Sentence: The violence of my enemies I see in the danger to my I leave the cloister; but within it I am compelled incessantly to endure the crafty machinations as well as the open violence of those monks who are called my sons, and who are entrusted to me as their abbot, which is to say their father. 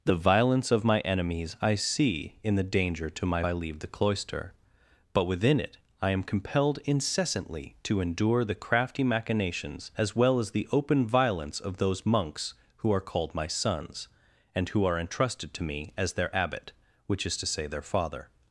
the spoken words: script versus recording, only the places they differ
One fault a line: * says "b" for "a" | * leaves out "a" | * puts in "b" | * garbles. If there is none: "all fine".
all fine